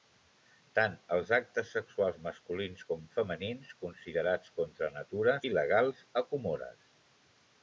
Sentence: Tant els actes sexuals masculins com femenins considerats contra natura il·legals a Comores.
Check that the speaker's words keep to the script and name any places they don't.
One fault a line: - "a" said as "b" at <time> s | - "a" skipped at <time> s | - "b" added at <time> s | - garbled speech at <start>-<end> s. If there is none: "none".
none